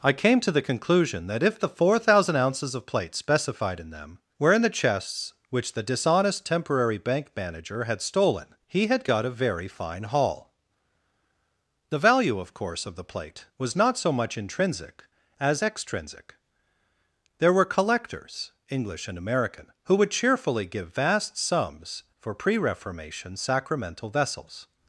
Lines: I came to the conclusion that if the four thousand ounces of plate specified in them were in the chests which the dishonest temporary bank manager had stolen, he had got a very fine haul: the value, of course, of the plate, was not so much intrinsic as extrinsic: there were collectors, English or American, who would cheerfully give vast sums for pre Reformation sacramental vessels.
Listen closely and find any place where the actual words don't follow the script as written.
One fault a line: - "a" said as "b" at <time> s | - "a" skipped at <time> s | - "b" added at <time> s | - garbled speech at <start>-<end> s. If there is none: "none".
- "or" said as "and" at 19.1 s